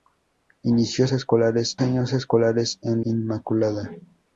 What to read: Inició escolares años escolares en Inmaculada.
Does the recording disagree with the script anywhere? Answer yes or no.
no